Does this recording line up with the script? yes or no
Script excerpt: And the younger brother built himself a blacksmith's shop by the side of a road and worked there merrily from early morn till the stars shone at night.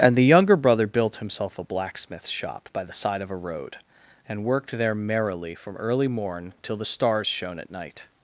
yes